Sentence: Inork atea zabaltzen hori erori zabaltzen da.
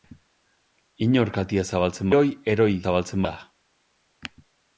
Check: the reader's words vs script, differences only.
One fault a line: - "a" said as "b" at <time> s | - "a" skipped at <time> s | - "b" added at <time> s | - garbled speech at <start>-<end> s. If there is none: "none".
none